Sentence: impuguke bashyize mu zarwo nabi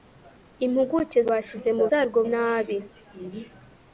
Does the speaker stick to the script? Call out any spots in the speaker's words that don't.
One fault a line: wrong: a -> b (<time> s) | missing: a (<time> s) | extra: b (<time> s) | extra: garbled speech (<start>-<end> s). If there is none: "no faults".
no faults